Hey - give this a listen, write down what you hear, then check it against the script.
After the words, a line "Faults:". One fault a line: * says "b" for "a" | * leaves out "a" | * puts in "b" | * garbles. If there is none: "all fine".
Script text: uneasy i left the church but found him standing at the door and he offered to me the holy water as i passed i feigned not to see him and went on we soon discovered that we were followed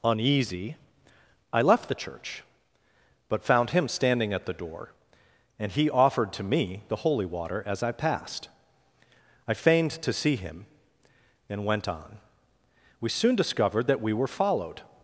uneasy i left the church but found him standing at the door and he offered to me the holy water as i passed i feigned to see him and went on we soon discovered that we were followed
Faults:
* leaves out "not"